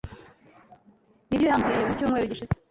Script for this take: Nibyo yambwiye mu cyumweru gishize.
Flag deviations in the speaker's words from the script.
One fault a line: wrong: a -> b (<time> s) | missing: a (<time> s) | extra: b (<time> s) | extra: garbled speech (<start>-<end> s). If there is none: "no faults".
no faults